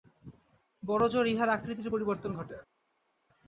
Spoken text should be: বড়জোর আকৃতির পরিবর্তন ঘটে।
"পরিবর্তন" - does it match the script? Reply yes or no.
yes